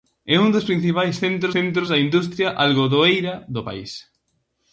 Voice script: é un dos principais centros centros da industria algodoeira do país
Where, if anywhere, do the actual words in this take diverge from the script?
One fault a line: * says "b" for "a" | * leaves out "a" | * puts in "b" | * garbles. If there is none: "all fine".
all fine